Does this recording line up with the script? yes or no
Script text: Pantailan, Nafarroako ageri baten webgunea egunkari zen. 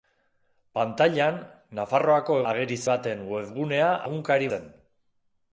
yes